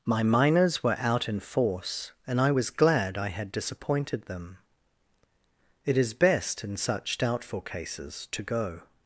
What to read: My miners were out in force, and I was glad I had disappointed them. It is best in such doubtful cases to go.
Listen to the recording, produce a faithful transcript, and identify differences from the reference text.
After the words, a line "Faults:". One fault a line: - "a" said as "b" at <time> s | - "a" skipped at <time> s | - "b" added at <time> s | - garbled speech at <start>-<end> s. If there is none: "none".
My miners were out in force, and I was glad I had disappointed them. It is best in such doubtful cases to go.
Faults:
none